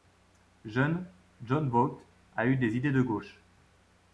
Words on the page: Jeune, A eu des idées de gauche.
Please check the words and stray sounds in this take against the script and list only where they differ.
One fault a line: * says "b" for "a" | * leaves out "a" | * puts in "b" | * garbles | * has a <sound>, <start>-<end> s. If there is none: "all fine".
* puts in "Jon Voight"